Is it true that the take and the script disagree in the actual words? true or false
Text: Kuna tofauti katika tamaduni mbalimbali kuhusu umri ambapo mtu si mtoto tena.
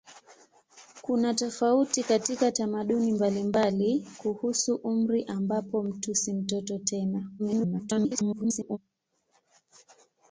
true